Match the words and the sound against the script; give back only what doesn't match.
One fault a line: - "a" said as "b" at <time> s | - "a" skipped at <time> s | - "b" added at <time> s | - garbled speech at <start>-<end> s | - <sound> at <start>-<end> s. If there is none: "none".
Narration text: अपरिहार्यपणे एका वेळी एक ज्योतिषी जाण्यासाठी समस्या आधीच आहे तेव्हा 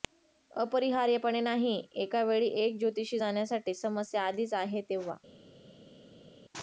- "नाही" added at 1.4 s